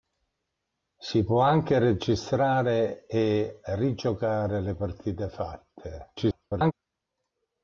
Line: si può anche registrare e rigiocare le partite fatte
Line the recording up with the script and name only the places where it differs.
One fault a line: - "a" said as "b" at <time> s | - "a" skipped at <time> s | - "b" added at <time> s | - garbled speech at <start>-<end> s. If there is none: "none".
- garbled speech at 6.2-6.7 s